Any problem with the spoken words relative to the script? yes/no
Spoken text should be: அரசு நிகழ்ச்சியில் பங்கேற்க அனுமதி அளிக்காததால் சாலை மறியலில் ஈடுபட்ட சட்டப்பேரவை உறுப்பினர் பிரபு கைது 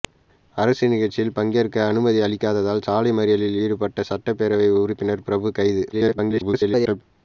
yes